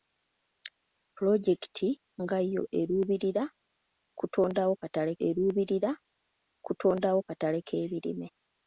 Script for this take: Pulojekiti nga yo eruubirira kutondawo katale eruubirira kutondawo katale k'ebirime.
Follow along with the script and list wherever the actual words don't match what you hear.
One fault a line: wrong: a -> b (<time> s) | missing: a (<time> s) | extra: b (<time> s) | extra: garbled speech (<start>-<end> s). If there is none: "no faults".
no faults